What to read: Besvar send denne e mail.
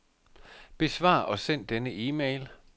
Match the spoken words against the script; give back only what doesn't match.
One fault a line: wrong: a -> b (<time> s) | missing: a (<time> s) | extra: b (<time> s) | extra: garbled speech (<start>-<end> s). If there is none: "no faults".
extra: og (1.2 s)